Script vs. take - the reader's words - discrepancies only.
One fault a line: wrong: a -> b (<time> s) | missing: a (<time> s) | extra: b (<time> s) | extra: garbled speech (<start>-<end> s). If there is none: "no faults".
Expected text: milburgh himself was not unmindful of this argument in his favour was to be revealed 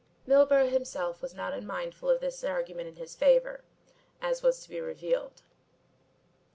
extra: as (4.2 s)